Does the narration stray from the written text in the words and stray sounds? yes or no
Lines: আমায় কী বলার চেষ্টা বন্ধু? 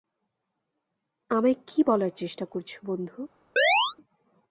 yes